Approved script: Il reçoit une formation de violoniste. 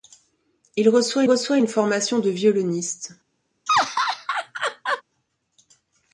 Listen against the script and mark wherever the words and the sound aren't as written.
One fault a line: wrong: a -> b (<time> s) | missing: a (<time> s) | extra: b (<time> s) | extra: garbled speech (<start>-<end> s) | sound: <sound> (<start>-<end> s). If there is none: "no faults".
extra: reçoit (1.2 s)
sound: laugh (3.7-5.0 s)